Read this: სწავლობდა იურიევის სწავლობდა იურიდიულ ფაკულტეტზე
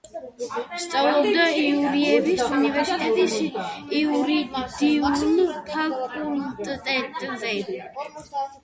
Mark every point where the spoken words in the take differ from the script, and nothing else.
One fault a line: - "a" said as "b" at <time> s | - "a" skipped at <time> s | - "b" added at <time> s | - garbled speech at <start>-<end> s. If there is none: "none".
- "სწავლობდა" said as "უნივერსიტეტის" at 2.6 s